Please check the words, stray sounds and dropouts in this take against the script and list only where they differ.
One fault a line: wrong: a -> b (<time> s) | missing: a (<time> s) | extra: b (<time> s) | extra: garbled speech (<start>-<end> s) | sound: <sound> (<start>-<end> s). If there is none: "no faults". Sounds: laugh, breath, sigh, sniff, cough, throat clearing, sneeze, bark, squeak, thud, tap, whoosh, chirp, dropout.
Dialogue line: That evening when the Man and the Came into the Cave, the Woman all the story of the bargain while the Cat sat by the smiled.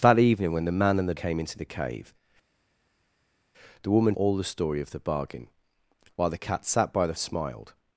no faults